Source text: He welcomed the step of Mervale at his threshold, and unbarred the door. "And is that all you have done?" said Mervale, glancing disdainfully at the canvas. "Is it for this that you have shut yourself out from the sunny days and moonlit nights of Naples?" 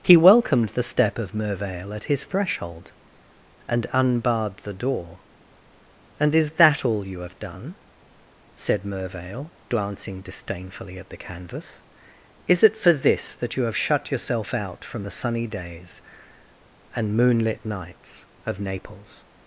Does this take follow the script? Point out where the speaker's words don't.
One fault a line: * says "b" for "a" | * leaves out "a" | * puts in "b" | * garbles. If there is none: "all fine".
all fine